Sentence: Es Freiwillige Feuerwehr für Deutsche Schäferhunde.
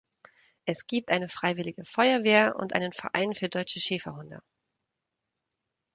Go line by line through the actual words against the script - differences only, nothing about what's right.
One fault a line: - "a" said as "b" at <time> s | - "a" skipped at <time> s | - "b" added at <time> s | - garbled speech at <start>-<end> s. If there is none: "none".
- "gibt eine" added at 0.9 s
- "und einen Verein" added at 2.6 s